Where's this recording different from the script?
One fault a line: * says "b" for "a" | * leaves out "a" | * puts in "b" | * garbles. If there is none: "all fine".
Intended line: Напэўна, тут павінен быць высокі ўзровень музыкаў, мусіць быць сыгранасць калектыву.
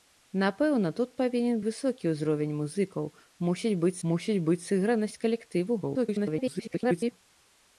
* leaves out "быць"
* puts in "мусіць быць"
* garbles